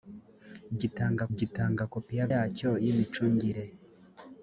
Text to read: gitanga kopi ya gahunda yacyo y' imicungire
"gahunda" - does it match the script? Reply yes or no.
no